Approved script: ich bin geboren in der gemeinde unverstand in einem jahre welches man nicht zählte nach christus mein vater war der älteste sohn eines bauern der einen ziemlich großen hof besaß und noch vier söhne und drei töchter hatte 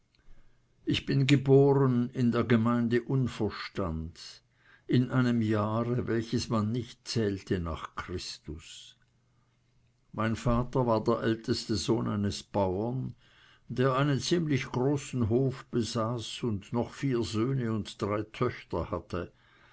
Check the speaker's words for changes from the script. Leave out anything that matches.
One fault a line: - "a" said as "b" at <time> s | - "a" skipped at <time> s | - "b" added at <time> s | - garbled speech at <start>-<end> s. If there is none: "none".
none